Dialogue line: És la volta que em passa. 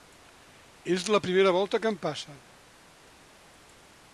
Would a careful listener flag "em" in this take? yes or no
no